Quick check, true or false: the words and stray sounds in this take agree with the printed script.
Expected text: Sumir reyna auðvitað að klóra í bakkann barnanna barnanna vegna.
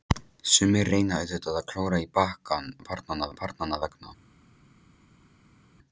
true